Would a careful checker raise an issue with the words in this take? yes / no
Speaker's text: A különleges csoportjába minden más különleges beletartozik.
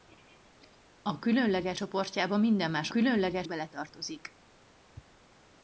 no